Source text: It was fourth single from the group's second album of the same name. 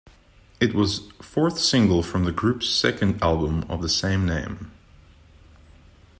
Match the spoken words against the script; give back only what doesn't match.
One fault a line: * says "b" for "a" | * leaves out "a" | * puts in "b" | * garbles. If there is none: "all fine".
all fine